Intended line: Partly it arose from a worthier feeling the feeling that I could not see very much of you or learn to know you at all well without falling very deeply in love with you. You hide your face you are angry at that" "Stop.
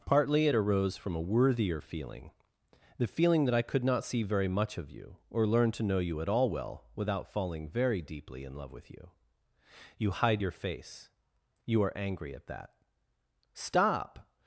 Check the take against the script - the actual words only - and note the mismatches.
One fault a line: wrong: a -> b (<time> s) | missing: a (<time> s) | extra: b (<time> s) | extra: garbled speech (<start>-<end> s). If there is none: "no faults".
no faults